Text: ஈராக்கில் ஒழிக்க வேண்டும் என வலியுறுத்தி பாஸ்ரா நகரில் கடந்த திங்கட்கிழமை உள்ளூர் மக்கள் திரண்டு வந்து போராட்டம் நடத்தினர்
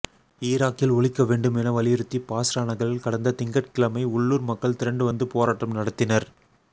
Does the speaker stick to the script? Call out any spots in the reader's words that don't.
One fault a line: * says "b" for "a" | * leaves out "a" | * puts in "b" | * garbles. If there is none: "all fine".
all fine